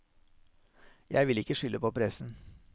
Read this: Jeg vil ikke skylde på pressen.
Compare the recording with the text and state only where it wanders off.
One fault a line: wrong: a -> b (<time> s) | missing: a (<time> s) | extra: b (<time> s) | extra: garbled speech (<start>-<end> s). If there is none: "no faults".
no faults